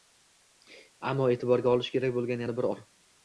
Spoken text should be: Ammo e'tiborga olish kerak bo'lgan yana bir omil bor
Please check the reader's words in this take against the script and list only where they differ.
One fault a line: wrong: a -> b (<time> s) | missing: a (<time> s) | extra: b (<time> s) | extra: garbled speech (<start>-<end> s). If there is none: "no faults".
missing: omil (2.7 s)